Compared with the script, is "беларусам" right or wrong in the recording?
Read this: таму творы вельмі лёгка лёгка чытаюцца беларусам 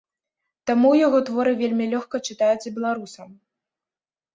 right